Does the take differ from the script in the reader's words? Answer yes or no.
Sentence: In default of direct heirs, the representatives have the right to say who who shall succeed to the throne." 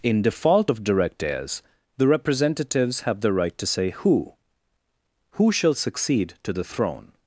no